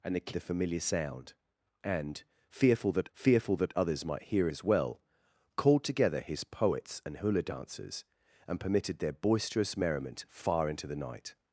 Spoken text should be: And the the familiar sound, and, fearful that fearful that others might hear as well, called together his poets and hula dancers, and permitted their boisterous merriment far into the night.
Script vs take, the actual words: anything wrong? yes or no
no